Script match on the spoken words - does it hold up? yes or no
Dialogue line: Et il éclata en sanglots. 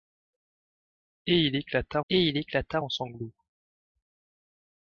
no